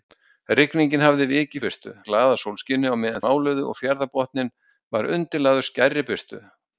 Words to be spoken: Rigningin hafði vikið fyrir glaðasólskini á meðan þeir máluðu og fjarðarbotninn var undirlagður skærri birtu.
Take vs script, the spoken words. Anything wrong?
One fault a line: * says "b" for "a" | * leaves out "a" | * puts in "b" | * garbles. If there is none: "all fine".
* says "birtu" for "fyrir"
* leaves out "þeir"